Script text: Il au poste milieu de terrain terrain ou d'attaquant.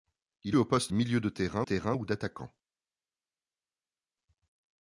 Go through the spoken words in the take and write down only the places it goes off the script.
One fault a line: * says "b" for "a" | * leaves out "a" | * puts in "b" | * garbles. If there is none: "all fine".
all fine